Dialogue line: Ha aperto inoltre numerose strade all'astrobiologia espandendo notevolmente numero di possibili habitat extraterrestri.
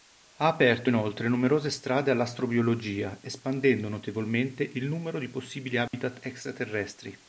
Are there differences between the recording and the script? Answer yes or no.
yes